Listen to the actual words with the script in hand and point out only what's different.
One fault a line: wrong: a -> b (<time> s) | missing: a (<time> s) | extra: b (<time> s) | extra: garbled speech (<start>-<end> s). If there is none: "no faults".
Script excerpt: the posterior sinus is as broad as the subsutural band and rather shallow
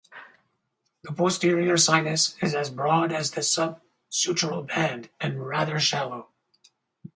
no faults